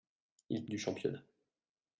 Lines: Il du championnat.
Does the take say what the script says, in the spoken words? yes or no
yes